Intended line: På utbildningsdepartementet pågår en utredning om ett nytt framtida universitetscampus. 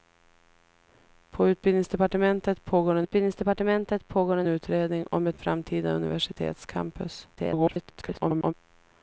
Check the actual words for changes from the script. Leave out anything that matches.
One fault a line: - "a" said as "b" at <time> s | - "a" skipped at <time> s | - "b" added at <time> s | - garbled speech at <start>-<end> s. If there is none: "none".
- "utbildningsdepartementet pågår en" added at 3.0 s
- "nytt" skipped at 5.4 s
- garbled speech at 7.3-8.5 s